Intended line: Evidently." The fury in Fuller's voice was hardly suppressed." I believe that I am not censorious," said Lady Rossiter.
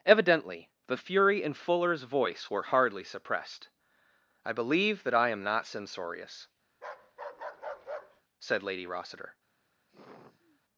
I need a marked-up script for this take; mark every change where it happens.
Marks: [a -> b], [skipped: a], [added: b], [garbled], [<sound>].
Evidently." The fury in Fuller's voice [was -> were] hardly suppressed." I believe that I am not censorious," [bark] said Lady Rossiter. [sigh]